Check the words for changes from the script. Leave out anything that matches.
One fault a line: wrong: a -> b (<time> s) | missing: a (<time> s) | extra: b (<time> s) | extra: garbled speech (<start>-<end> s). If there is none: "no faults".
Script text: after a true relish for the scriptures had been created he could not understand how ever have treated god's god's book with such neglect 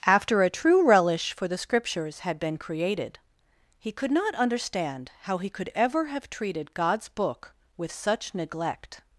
extra: he could (5.4 s)
missing: god's (7.1 s)